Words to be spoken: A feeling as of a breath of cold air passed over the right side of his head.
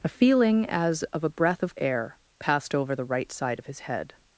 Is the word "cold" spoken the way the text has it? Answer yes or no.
no